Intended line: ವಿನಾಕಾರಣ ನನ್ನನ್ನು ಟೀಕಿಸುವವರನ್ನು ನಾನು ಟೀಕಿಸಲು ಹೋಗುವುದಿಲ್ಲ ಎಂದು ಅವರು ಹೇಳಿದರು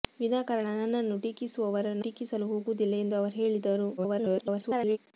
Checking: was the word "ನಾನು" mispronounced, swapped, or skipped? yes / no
yes